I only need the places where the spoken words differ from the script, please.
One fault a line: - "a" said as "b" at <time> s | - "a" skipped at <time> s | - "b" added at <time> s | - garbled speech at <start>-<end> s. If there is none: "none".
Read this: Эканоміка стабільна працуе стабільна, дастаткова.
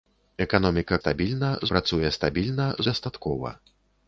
none